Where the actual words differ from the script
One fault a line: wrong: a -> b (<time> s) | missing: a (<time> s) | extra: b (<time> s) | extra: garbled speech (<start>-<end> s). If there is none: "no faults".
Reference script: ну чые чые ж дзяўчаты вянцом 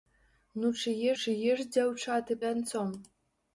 no faults